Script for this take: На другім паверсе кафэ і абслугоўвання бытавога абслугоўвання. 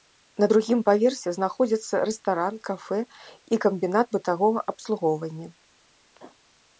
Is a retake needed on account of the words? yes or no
yes